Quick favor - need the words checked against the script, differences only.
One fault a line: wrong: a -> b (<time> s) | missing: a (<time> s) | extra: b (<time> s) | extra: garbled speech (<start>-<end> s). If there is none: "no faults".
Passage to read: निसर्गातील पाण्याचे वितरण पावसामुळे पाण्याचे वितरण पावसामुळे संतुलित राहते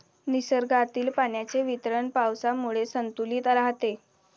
missing: पाण्याचे वितरण पावसामुळे (2.9 s)